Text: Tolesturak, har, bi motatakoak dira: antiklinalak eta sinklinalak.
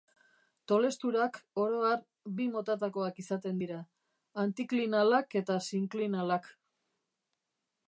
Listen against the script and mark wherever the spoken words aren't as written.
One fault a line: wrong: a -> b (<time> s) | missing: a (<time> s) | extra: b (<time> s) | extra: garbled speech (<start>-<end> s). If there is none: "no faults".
extra: oro (1.6 s)
extra: izaten (3.2 s)